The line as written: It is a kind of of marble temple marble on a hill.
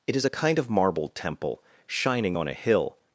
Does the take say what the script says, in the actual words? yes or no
no